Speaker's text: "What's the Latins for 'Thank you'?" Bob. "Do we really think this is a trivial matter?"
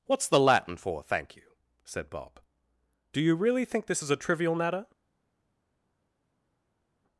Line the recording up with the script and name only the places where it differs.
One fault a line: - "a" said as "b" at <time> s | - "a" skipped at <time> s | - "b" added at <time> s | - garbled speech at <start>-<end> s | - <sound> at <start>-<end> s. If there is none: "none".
- "Latins" said as "Latin" at 0.4 s
- "said" added at 1.9 s
- "we" said as "you" at 3.2 s